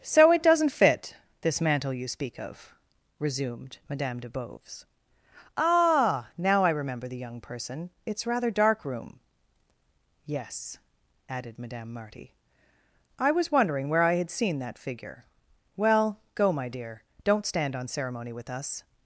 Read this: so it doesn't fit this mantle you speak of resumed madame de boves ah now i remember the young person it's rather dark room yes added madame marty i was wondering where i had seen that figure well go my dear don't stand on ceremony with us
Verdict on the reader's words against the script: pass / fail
pass